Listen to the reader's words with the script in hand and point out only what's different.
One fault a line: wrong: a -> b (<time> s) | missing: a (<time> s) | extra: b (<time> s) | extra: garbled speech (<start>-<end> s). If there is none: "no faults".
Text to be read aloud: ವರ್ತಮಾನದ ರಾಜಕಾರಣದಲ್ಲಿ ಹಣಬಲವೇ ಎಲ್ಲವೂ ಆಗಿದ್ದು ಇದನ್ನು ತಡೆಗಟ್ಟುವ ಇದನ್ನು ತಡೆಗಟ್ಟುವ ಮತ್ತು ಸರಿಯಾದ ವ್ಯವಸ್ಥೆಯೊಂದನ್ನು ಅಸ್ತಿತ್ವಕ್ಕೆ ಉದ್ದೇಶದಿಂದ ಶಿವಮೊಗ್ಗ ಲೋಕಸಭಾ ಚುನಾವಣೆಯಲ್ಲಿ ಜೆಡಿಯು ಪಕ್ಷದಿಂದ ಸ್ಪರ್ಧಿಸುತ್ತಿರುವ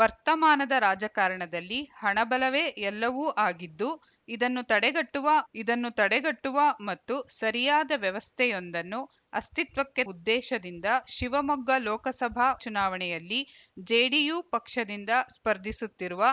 no faults